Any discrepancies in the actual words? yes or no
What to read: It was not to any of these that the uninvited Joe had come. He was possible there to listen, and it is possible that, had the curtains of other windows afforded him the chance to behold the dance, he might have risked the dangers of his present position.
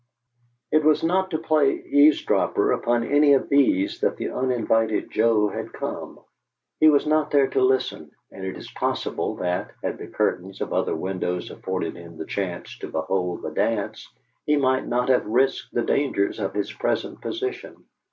yes